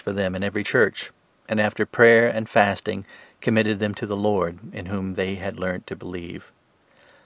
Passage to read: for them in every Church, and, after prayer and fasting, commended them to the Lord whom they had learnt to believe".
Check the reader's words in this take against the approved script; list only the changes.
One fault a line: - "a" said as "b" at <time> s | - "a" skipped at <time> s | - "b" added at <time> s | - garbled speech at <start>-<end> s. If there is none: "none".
- "in" added at 4.7 s